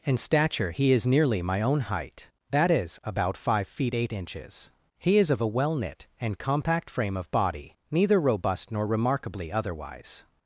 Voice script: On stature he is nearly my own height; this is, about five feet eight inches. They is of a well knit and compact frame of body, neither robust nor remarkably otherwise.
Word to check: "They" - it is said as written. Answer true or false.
false